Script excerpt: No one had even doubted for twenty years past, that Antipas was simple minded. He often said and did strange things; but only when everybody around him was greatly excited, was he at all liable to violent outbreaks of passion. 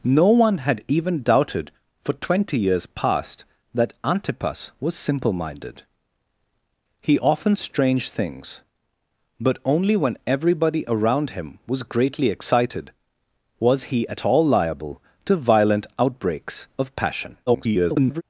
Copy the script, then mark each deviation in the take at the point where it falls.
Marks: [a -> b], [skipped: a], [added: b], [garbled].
No one had even doubted for twenty years past, that Antipas was simple minded. He often [skipped: said and did] strange things; but only when everybody around him was greatly excited, was he at all liable to violent outbreaks of passion. [garbled]